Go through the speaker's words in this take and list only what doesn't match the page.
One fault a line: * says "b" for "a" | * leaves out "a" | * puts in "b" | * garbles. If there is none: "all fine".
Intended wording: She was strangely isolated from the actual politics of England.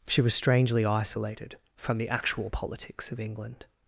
all fine